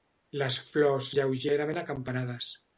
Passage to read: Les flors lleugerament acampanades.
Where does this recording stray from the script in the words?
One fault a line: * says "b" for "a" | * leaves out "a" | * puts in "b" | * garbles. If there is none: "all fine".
all fine